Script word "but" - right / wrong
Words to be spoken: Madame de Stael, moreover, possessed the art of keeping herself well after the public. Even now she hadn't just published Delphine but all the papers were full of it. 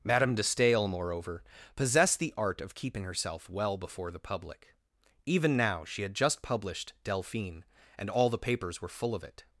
wrong